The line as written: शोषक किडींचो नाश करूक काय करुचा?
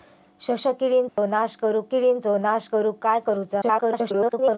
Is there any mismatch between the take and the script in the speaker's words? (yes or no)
yes